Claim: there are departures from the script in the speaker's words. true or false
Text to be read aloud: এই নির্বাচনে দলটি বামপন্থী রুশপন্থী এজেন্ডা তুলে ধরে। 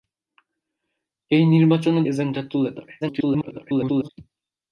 true